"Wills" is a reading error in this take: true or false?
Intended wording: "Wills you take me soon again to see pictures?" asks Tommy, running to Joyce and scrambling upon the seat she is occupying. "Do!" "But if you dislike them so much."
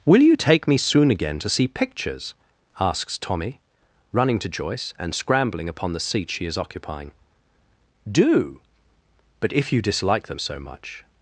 true